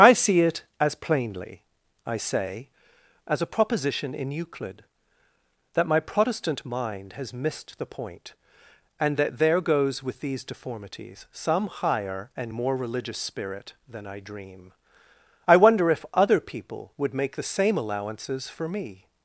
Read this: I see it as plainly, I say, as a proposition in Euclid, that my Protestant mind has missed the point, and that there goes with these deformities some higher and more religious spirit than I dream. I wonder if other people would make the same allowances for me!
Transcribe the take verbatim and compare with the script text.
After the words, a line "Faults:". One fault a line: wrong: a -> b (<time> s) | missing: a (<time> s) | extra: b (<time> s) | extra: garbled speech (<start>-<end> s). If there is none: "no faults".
I see it as plainly, I say, as a proposition in Euclid, that my Protestant mind has missed the point, and that there goes with these deformities some higher and more religious spirit than I dream. I wonder if other people would make the same allowances for me!
Faults:
no faults